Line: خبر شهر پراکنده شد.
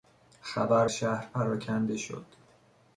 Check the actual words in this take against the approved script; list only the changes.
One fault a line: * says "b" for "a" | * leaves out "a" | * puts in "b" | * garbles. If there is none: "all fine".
all fine